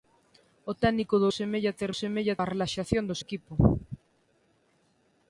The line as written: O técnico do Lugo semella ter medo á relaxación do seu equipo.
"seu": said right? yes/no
no